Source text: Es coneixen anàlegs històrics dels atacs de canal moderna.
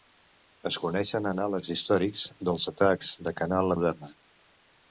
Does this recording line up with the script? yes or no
yes